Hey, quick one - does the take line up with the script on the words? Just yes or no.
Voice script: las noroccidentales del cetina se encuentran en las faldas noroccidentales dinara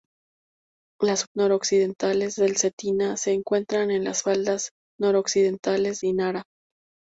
yes